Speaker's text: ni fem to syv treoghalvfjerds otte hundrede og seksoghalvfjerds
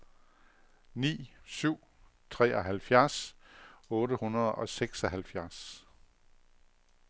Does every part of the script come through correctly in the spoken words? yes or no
no